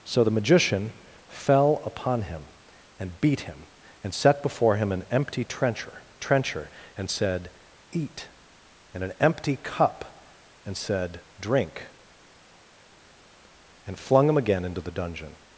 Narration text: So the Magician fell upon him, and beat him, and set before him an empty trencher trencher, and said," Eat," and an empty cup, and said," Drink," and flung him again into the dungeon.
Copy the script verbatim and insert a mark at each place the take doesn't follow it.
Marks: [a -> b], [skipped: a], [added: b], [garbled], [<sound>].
So the Magician fell upon him, and beat him, and set before him an empty trencher trencher, and said," Eat," and an empty cup, and said," Drink," and flung him again into the dungeon.